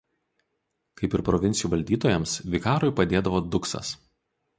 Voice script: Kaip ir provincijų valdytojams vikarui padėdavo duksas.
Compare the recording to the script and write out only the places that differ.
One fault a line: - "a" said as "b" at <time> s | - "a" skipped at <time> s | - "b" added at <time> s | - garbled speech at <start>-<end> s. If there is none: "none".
none